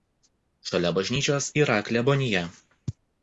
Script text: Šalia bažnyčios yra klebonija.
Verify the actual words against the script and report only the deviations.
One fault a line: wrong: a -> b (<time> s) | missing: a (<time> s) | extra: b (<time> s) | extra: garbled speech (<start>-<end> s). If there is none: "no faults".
no faults